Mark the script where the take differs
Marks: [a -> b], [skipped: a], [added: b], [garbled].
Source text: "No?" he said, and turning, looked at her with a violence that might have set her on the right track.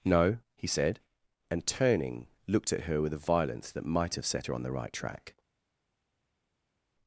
"No?" he said, and turning, looked at her with a violence that might have set her on the right track.